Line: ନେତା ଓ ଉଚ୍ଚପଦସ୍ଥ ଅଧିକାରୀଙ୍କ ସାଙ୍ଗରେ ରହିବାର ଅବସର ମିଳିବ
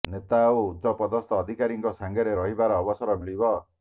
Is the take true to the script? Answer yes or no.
yes